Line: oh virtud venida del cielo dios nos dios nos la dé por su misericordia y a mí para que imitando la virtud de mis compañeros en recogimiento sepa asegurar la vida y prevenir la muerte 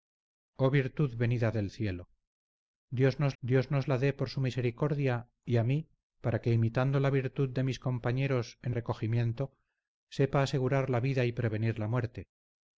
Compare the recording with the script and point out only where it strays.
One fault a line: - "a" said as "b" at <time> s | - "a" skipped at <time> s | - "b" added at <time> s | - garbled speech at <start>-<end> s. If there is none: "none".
none